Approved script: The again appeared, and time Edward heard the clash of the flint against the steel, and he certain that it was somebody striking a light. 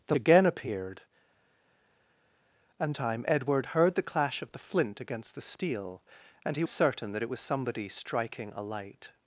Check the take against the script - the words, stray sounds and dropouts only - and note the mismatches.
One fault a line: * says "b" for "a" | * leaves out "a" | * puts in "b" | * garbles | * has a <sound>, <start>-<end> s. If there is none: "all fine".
all fine